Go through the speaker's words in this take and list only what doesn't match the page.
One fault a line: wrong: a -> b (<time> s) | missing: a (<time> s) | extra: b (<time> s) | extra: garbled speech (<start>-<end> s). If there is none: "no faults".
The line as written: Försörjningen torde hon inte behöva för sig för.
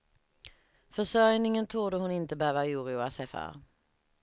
wrong: för -> oroa (2.6 s)